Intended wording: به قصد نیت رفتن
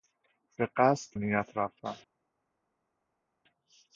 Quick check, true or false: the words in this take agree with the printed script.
true